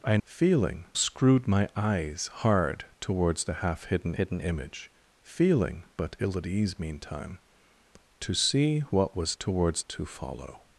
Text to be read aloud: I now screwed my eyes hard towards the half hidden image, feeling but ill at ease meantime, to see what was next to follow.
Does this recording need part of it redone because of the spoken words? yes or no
yes